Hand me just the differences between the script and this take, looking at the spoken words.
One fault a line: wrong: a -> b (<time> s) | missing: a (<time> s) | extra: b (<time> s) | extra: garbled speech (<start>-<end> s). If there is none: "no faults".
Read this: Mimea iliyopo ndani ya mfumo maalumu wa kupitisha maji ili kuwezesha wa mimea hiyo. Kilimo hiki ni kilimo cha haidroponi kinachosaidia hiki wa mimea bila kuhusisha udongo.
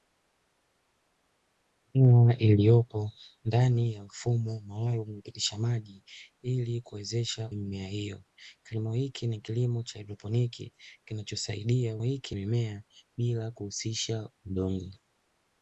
no faults